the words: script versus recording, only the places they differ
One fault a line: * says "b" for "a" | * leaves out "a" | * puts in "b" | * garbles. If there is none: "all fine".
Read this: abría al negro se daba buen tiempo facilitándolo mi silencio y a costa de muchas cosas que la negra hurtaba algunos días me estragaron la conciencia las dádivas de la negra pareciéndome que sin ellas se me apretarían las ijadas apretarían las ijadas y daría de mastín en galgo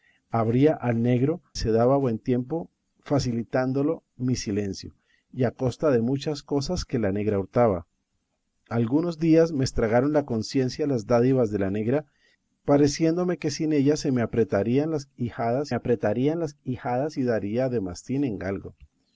all fine